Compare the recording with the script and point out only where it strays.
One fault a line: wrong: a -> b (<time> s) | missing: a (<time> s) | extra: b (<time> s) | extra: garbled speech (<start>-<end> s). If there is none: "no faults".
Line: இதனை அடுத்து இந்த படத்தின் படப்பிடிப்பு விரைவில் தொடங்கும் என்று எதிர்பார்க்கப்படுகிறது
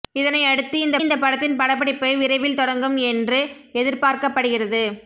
extra: இந்த (1.0 s)